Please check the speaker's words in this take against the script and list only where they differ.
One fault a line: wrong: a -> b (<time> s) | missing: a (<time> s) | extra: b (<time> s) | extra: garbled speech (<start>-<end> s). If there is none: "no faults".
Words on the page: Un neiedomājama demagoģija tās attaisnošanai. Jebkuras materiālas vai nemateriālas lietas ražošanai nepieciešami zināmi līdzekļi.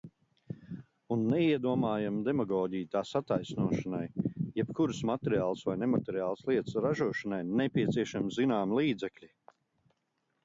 no faults